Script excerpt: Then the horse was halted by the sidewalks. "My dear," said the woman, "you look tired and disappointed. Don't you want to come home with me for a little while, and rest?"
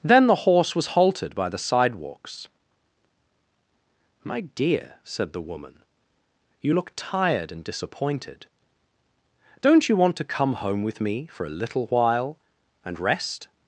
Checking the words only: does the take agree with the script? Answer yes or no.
yes